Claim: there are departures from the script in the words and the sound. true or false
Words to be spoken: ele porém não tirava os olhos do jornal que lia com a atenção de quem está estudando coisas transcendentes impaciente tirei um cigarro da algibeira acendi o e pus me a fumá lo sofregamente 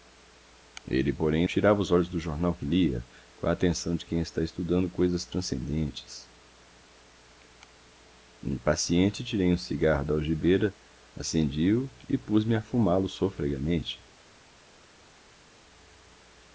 true